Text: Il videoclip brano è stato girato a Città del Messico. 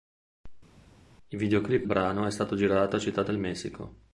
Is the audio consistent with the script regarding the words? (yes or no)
yes